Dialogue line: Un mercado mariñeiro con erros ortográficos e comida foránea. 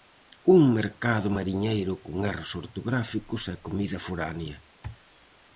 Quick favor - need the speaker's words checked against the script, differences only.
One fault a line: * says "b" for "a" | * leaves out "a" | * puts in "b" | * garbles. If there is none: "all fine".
all fine